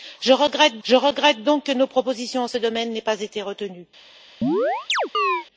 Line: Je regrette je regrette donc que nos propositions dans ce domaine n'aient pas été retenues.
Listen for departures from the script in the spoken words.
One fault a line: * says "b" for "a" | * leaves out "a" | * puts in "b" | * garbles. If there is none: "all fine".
all fine